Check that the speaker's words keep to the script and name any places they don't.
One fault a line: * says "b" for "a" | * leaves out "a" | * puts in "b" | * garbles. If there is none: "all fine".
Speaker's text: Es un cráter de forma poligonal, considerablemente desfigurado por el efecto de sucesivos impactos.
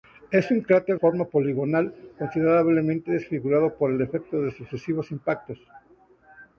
* leaves out "de"